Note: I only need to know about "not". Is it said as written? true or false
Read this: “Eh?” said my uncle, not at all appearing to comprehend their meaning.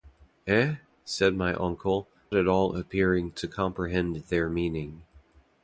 false